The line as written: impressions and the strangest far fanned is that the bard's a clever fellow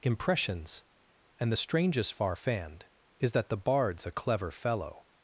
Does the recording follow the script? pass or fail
pass